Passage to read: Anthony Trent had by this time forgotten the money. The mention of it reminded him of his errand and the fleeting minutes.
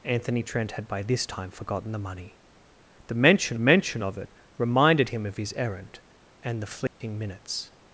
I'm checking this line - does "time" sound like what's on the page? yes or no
yes